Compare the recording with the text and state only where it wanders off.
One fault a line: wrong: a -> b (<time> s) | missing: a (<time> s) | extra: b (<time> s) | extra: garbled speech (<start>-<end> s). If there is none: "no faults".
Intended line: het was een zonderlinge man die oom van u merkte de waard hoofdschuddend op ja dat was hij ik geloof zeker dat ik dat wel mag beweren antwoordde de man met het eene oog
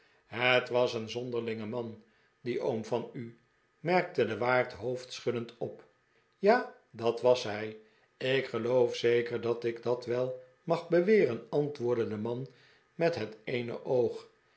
no faults